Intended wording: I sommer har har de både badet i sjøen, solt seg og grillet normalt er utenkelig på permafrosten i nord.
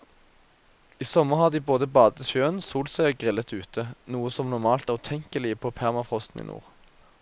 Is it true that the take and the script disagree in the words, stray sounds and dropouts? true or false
true